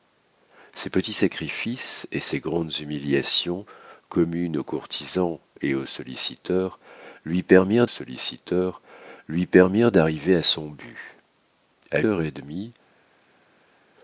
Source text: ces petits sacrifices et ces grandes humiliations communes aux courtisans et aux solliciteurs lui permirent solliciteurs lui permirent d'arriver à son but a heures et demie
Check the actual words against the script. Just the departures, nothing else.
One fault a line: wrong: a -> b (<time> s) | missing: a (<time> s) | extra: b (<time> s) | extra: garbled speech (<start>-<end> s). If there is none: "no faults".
no faults